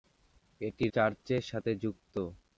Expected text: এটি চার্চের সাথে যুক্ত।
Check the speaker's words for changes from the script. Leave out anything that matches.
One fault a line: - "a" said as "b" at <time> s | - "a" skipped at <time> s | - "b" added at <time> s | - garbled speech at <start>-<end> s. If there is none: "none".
none